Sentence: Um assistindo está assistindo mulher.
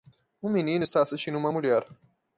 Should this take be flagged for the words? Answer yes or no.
yes